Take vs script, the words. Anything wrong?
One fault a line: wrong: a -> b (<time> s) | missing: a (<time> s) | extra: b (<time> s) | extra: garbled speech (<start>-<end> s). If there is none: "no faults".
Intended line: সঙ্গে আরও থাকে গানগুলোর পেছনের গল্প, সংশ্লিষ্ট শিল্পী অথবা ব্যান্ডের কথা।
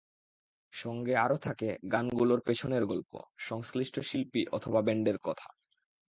no faults